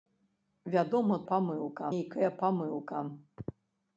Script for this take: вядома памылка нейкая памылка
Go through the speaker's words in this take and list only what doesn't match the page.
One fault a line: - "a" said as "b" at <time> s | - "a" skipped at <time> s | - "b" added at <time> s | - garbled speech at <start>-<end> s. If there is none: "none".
none